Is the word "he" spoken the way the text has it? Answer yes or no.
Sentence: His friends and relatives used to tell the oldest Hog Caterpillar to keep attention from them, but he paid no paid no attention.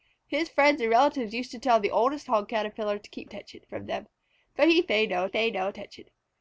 yes